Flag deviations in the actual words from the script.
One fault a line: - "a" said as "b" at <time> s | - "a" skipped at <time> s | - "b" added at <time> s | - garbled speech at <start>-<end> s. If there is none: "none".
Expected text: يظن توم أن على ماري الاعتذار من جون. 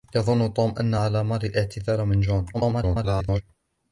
- garbled speech at 2.5-3.4 s